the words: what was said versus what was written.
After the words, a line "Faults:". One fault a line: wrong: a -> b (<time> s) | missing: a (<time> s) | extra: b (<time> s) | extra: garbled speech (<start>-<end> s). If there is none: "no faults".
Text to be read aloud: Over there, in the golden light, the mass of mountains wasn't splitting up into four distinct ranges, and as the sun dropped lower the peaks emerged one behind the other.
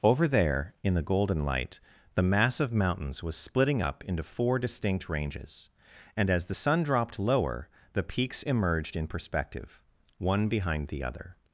Over there, in the golden light, the mass of mountains was splitting up into four distinct ranges, and as the sun dropped lower the peaks emerged in perspective, one behind the other.
Faults:
wrong: wasn't -> was (3.2 s)
extra: in perspective (9.0 s)